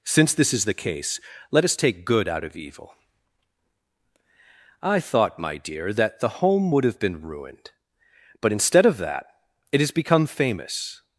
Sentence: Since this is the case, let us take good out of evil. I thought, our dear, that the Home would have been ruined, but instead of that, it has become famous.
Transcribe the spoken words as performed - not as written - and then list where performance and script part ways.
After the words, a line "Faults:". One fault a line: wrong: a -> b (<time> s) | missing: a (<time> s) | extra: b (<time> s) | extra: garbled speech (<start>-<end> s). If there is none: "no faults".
Since this is the case, let us take good out of evil. I thought, my dear, that the Home would have been ruined, but instead of that, it has become famous.
Faults:
wrong: our -> my (5.4 s)